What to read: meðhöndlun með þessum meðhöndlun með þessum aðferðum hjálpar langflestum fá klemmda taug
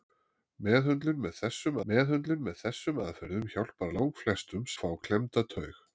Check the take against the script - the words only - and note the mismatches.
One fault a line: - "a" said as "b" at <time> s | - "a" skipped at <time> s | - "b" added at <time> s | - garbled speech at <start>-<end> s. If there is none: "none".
none